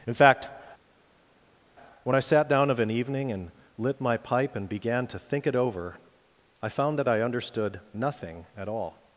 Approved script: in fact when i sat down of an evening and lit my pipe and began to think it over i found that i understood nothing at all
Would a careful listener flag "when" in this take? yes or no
no